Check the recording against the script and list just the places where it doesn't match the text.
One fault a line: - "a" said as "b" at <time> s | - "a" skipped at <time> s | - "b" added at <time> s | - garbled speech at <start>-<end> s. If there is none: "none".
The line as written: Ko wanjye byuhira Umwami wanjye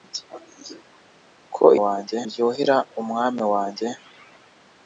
none